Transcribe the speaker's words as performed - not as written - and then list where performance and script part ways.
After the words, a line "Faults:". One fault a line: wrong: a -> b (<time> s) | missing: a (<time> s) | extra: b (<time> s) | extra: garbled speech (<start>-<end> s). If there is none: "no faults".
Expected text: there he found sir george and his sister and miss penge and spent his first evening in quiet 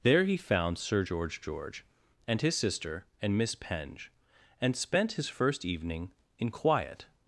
there he found sir george george and his sister and miss penge and spent his first evening in quiet
Faults:
extra: george (1.4 s)